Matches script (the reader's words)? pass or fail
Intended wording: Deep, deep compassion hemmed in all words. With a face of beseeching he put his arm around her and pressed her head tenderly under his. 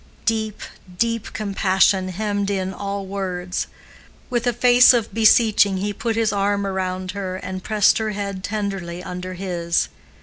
pass